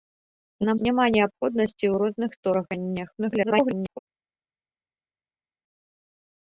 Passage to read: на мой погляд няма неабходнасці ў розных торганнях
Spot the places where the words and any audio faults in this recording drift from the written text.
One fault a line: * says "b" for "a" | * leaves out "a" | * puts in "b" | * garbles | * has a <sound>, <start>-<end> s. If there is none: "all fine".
* leaves out "мой погляд"
* garbles